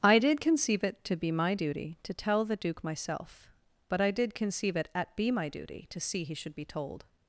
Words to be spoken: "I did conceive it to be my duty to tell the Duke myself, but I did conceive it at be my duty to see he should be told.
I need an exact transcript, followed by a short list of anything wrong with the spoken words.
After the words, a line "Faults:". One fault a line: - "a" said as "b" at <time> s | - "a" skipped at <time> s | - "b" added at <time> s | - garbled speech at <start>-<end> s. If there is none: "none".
"I did conceive it to be my duty to tell the Duke myself, but I did conceive it at be my duty to see he should be told.
Faults:
none